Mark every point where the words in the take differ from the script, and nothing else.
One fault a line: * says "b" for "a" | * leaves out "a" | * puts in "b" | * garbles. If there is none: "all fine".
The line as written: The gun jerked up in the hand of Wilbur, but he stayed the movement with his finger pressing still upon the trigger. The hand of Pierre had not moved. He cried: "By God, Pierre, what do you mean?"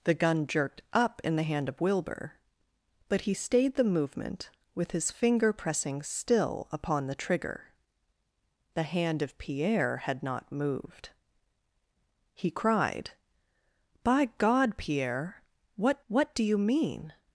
* puts in "what"